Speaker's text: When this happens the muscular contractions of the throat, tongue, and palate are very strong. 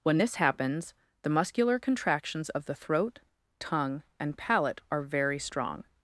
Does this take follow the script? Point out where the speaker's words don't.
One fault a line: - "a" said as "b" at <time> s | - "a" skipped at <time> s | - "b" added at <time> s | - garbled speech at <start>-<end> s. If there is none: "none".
none